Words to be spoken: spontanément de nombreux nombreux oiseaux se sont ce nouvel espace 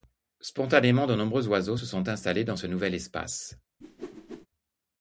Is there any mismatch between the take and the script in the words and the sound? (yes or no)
yes